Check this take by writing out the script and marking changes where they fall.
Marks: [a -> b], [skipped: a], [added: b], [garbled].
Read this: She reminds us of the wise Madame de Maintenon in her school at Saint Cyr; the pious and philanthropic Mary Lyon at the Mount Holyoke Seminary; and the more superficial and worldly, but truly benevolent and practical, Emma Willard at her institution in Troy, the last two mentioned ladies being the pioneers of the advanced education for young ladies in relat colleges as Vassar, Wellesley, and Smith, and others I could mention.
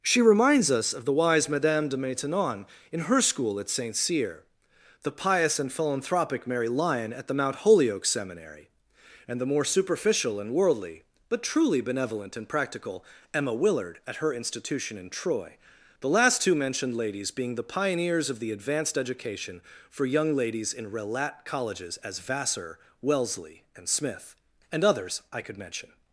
She reminds us of the wise Madame de Maintenon in her school at Saint Cyr; the pious and philanthropic Mary Lyon at the Mount Holyoke Seminary; and the more superficial and worldly, but truly benevolent and practical, Emma Willard at her institution in Troy, the last two mentioned ladies being the pioneers of the advanced education for young ladies in relat colleges as Vassar, Wellesley, and Smith, and others I could mention.